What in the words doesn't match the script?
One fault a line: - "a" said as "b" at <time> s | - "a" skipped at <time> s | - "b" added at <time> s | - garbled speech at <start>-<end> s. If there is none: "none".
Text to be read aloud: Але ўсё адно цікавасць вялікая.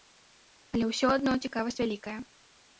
none